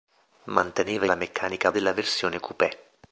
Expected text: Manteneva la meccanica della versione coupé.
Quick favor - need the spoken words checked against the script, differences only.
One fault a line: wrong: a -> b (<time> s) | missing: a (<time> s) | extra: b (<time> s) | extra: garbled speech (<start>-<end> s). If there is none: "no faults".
no faults